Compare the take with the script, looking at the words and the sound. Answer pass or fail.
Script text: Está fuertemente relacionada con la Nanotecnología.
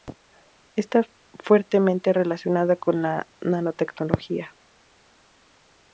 pass